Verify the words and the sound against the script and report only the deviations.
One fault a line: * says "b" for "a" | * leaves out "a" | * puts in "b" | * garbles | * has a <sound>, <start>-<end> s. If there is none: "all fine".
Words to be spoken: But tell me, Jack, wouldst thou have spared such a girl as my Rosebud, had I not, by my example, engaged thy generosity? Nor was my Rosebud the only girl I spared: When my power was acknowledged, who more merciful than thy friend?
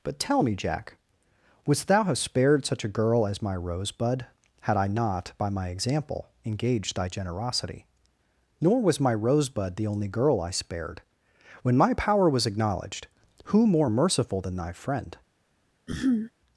* has a throat clearing, 15.9-16.3 s